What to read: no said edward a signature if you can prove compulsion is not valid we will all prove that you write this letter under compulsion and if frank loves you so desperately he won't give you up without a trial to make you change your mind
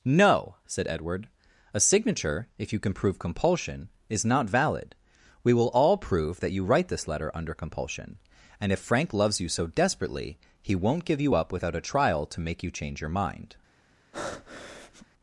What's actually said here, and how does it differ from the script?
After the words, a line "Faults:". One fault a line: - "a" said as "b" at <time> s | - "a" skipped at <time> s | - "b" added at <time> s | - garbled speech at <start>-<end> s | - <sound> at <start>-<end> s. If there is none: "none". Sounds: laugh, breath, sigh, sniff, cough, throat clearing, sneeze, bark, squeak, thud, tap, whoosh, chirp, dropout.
no said edward a signature if you can prove compulsion is not valid we will all prove that you write this letter under compulsion and if frank loves you so desperately he won't give you up without a trial to make you change your mind
Faults:
- breath at 14.1-15.1 s